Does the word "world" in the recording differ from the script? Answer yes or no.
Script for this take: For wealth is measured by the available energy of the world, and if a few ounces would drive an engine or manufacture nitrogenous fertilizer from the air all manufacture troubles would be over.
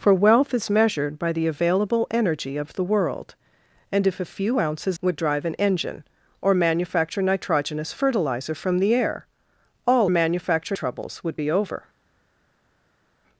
no